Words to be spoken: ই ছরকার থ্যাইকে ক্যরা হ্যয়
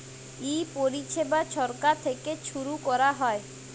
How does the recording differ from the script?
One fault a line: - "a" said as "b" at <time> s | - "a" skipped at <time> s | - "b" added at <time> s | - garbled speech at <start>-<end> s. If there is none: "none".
- "পরিছেবা" added at 0.8 s
- "ছুরু" added at 2.4 s